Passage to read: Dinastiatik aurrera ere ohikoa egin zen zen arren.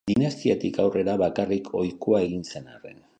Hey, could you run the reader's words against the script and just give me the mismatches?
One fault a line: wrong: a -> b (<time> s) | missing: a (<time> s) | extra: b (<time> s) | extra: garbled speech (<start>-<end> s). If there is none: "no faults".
wrong: ere -> bakarrik (1.2 s)
missing: zen (2.7 s)